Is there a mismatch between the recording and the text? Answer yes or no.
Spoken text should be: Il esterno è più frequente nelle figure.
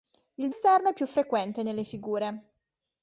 no